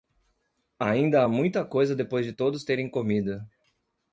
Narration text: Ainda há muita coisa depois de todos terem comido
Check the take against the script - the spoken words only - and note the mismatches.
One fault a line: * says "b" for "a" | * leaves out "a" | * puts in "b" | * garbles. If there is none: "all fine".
all fine